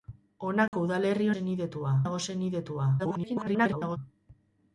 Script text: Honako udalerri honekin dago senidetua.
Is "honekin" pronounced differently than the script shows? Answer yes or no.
yes